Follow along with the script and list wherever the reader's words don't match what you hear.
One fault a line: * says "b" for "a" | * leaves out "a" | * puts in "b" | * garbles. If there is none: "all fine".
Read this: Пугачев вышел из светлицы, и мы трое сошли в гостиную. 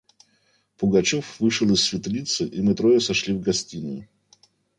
all fine